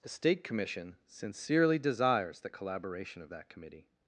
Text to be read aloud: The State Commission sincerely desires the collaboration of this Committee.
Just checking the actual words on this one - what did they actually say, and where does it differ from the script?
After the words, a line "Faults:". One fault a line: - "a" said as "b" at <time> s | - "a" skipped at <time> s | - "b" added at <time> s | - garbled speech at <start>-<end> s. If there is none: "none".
The State Commission sincerely desires the collaboration of that Committee.
Faults:
- "this" said as "that" at 3.3 s